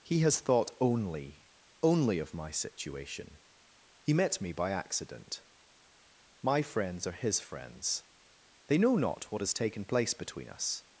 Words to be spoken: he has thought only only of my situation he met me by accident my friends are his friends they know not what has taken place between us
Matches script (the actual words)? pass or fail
pass